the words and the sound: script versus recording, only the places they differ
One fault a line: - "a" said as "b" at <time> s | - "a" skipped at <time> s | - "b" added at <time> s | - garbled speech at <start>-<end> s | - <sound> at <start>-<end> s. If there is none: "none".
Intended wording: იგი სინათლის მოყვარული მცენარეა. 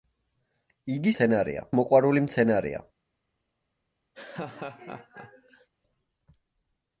- "სინათლის" said as "მცენარეა" at 1.1 s
- laugh at 4.1-5.7 s